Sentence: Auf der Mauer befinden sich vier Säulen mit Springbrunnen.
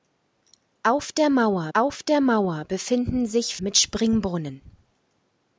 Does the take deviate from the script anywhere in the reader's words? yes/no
yes